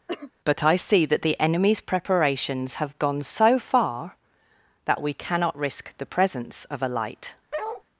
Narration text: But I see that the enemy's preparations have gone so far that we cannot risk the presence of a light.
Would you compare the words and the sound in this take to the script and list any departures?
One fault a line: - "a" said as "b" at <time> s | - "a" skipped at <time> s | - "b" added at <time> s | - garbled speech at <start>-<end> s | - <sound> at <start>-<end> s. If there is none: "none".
- cough at 0.1-0.3 s
- bark at 7.5-7.8 s